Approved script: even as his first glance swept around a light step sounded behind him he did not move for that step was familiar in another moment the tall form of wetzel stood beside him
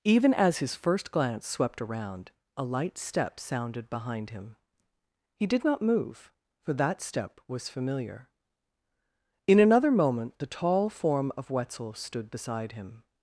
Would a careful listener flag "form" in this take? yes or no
no